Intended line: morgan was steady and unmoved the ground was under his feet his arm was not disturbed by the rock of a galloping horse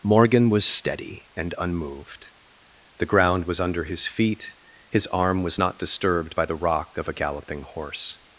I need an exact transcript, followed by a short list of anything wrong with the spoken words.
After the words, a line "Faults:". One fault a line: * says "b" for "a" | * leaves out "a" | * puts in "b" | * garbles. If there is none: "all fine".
morgan was steady and unmoved the ground was under his feet his arm was not disturbed by the rock of a galloping horse
Faults:
all fine